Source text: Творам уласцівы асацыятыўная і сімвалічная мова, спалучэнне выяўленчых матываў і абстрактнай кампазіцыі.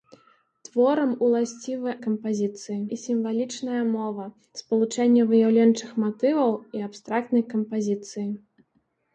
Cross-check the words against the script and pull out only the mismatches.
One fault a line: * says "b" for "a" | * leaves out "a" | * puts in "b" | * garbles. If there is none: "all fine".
* says "кампазіцыі" for "асацыятыўная"